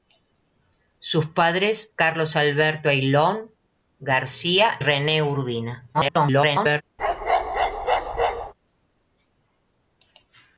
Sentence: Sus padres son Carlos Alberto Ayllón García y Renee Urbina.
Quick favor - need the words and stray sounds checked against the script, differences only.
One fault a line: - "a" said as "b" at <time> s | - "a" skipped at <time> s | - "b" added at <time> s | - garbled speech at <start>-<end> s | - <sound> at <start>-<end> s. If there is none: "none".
- "son" skipped at 1.9 s
- "y" skipped at 4.8 s
- garbled speech at 5.9-6.8 s
- bark at 7.0-8.5 s